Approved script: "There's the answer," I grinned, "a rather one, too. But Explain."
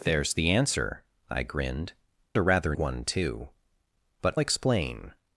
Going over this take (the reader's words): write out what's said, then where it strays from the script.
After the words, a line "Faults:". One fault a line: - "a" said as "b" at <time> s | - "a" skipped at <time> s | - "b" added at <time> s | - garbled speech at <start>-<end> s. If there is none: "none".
"There's the answer," I grinned, "a rather one, too. But Explain."
Faults:
none